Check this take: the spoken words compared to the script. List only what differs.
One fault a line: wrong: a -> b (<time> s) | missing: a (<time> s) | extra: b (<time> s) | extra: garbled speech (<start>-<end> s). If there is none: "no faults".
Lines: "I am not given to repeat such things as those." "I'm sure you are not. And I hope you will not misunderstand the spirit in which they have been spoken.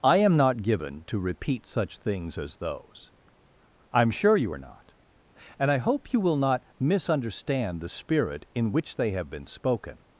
no faults